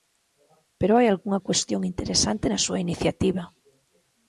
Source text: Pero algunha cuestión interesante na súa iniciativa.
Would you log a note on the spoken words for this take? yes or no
yes